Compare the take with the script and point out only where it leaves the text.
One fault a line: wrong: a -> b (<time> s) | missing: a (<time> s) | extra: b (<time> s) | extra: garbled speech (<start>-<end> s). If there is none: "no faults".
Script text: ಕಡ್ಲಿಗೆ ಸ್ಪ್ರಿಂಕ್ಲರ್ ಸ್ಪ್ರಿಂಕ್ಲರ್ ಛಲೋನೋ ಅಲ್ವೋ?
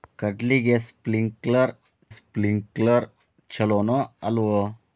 no faults